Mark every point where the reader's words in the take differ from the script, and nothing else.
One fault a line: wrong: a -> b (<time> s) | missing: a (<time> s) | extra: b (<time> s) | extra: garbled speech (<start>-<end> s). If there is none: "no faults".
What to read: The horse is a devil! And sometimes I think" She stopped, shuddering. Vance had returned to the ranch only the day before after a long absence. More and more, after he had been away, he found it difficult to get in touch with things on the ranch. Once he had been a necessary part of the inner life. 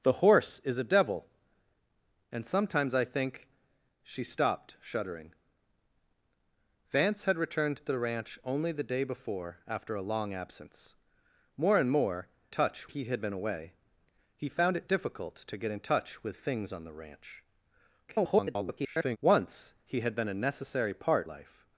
wrong: after -> touch (12.5 s)
extra: garbled speech (18.1-19.2 s)
missing: of the inner (21.3 s)